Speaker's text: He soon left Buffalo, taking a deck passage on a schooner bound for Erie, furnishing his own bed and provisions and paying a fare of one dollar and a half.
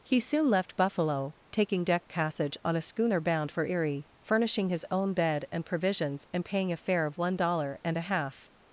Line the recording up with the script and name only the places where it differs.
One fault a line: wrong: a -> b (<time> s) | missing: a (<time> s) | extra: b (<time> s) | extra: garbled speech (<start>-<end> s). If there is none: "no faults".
missing: a (1.8 s)